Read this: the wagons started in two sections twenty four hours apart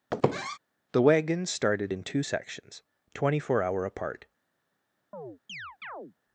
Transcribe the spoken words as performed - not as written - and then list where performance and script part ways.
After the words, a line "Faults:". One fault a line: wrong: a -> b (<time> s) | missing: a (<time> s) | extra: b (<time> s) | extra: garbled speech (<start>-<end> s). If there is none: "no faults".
the wagons started in two sections twenty four hour apart
Faults:
wrong: hours -> hour (3.6 s)